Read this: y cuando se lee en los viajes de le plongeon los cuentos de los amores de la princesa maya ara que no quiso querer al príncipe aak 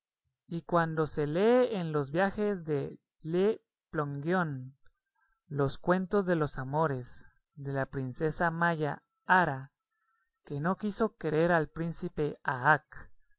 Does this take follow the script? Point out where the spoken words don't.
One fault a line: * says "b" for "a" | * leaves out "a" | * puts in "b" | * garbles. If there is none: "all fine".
all fine